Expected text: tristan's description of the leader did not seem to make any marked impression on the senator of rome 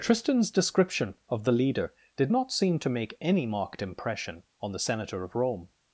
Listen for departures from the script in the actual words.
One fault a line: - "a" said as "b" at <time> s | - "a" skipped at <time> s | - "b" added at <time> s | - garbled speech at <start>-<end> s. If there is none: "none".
none